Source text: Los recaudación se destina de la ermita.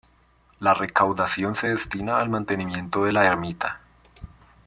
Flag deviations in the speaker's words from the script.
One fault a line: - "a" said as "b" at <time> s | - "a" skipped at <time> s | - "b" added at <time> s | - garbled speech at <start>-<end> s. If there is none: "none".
- "Los" said as "La" at 0.6 s
- "al mantenimiento" added at 2.2 s